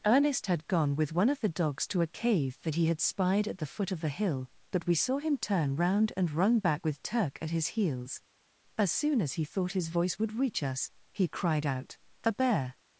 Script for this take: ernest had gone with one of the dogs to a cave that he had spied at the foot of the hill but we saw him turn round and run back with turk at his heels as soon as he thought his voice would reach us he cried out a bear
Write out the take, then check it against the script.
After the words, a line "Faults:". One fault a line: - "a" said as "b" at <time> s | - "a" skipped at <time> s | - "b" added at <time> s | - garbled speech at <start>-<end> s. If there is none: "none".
ernest had gone with one of the dogs to a cave that he had spied at the foot of the hill but we saw him turn round and run back with turk at his heels as soon as he thought his voice would reach us he cried out a bear
Faults:
none